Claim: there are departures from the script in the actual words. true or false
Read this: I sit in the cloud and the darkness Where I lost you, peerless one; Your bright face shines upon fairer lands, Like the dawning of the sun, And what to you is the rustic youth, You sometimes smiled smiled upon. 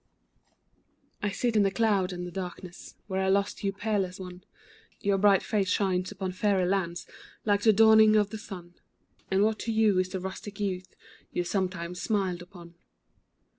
true